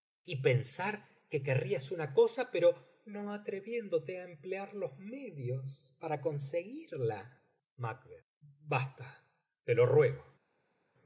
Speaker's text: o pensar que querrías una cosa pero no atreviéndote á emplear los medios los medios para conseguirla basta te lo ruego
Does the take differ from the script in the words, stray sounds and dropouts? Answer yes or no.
yes